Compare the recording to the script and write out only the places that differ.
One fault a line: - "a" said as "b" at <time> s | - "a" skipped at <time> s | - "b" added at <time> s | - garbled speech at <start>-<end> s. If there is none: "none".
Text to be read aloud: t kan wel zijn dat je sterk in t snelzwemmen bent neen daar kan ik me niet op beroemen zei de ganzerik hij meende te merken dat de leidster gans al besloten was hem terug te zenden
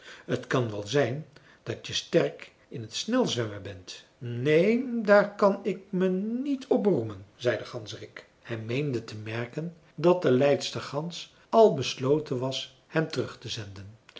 none